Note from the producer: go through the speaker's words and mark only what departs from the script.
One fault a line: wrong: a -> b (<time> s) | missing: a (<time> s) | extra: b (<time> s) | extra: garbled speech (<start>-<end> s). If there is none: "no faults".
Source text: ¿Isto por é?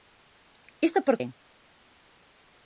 no faults